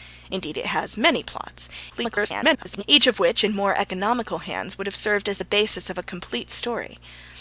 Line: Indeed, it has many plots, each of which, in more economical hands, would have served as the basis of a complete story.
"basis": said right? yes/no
yes